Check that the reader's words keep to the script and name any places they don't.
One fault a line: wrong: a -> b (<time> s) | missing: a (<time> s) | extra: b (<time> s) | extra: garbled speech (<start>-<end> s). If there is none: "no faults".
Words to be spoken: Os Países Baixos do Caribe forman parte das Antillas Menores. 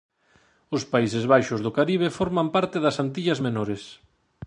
no faults